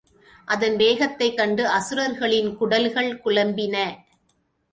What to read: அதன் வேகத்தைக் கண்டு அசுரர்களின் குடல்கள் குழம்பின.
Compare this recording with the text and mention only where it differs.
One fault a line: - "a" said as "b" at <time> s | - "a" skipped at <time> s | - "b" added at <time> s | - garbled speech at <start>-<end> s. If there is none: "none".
none